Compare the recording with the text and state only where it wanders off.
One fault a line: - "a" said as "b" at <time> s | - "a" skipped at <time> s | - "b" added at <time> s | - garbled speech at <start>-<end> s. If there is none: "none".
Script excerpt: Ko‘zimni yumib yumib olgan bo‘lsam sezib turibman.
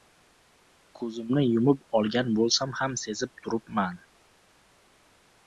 - "yumib" skipped at 1.8 s
- "ham" added at 2.8 s